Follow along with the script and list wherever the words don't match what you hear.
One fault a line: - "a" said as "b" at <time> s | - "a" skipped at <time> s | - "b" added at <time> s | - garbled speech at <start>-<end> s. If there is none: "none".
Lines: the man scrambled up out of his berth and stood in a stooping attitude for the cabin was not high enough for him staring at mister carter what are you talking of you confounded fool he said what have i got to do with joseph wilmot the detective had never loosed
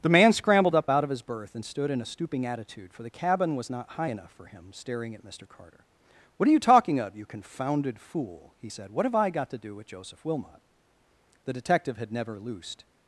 none